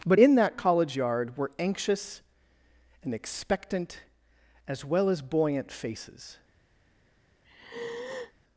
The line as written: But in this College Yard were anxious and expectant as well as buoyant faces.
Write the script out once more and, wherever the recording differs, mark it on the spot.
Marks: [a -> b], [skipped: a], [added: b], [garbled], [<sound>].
But in [this -> that] College Yard were anxious and expectant as well as buoyant faces. [sigh]